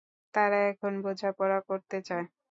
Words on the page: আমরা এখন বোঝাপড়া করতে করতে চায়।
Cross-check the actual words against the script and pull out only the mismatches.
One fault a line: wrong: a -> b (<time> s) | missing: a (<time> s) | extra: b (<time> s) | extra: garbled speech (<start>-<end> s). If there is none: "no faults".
wrong: আমরা -> তারা (0.3 s)
missing: করতে (2.0 s)